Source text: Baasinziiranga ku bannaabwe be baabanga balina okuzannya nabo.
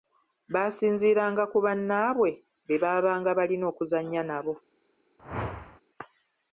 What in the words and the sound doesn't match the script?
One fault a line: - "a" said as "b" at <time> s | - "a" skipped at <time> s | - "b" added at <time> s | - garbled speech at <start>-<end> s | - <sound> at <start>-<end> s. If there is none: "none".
- whoosh at 5.2-5.8 s